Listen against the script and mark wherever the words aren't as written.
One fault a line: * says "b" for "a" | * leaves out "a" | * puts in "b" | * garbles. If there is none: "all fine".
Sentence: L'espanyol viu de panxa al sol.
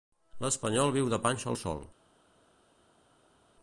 all fine